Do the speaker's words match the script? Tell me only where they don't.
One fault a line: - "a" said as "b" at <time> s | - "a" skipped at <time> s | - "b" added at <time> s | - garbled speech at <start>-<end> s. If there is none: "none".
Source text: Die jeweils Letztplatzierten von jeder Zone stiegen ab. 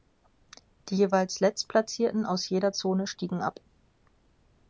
- "von" said as "aus" at 2.2 s